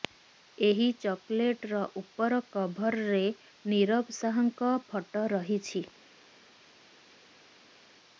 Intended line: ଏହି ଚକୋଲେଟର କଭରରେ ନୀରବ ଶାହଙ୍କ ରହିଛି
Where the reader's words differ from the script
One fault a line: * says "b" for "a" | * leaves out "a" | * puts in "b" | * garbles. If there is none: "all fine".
* puts in "ଉପର"
* puts in "ଫଟୋ"